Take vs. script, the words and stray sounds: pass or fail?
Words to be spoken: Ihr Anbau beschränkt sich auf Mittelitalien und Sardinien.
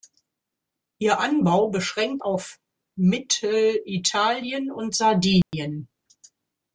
fail